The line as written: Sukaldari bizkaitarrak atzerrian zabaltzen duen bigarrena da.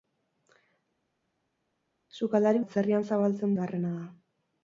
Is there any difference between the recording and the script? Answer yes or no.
yes